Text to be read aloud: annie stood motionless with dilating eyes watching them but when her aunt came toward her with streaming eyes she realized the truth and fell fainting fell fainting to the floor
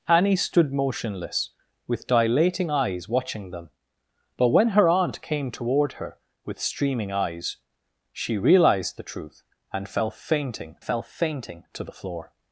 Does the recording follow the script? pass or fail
pass